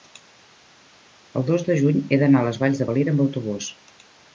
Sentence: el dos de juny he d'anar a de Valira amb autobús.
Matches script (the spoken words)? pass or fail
fail